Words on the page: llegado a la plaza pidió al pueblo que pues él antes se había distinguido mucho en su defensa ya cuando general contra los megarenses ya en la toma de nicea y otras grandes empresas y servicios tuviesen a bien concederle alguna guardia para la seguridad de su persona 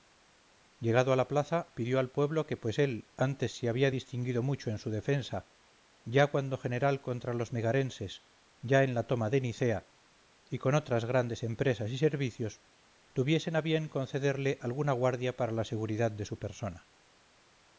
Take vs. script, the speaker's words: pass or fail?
fail